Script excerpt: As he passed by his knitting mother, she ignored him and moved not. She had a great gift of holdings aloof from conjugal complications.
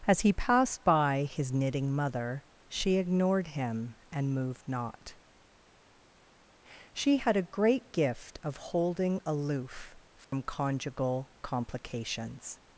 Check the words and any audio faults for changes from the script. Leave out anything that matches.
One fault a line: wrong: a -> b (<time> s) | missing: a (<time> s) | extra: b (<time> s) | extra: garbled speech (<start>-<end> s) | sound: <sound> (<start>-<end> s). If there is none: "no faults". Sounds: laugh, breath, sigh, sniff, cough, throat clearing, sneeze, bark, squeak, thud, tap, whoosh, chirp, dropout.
wrong: holdings -> holding (8.6 s)
sound: dropout (10.2-10.3 s)